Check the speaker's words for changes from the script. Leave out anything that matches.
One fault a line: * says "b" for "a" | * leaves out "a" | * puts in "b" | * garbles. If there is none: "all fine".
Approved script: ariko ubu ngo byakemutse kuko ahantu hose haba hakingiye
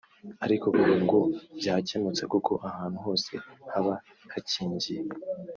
all fine